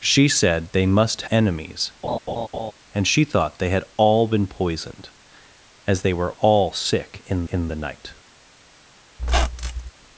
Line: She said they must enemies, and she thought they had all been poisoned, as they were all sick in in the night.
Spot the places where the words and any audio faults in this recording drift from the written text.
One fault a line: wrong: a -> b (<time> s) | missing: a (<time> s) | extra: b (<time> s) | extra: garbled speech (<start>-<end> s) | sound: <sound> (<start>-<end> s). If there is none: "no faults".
sound: laugh (2.0-2.7 s)
sound: squeak (9.2-9.9 s)